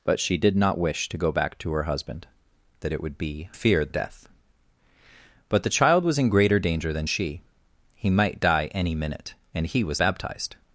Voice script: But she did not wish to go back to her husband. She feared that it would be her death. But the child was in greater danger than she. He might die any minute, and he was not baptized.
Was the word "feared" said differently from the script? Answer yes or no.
yes